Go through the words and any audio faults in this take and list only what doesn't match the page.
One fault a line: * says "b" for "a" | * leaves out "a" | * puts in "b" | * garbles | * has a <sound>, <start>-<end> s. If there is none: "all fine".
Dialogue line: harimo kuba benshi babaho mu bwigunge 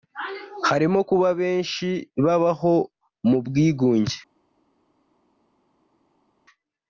all fine